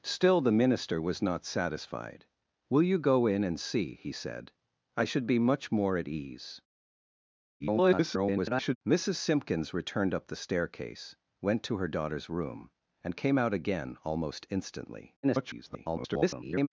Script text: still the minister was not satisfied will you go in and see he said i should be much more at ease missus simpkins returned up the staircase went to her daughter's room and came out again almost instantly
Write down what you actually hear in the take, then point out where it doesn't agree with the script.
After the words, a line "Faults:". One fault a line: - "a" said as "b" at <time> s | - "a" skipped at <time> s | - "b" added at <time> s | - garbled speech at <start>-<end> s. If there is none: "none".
still the minister was not satisfied will you go in and see he said i should be much more at ease [garbled] missus simpkins returned up the staircase went to her daughter's room and came out again almost instantly [garbled]
Faults:
- garbled speech at 7.6-8.8 s
- garbled speech at 15.2-16.7 s